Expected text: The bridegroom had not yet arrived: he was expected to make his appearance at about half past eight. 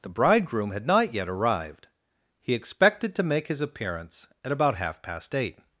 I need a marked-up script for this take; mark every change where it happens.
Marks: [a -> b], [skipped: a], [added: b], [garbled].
The bridegroom had not yet arrived: he [skipped: was] expected to make his appearance at about half past eight.